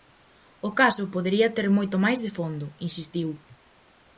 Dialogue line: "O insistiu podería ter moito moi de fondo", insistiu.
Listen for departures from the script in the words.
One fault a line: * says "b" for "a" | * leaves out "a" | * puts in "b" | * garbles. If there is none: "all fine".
* says "caso" for "insistiu"
* says "máis" for "moi"